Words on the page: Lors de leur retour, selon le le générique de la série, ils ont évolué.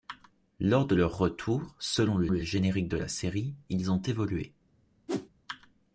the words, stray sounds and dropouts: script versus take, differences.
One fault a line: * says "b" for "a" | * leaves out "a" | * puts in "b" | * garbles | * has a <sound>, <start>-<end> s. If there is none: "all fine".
* has a whoosh, 5.1-5.3 s